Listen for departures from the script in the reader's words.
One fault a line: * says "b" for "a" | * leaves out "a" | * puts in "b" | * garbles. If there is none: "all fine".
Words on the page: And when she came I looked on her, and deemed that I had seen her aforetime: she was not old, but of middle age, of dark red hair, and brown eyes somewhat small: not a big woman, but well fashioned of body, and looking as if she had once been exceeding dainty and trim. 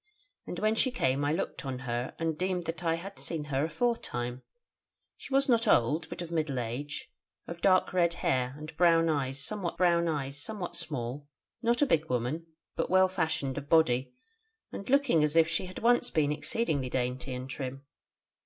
* puts in "brown eyes somewhat"